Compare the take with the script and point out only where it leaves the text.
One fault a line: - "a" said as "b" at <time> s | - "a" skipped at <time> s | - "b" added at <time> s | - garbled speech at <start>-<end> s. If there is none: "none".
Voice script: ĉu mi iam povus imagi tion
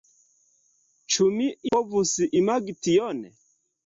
- "iam" skipped at 1.5 s